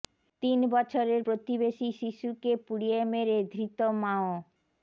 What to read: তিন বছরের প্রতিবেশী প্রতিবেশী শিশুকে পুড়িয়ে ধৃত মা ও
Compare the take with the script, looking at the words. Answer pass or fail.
fail